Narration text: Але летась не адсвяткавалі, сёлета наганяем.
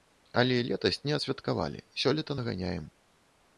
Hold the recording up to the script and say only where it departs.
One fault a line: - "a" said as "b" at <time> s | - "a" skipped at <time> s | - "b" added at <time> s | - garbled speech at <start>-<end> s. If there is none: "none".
none